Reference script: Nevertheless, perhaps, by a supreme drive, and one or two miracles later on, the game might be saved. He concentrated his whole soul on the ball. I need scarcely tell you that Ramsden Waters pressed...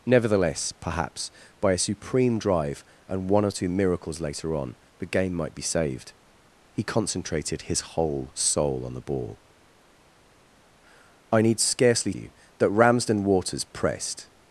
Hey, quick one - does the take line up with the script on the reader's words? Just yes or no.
no